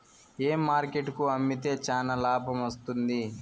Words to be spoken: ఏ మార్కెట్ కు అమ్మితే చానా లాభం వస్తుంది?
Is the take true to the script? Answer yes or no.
yes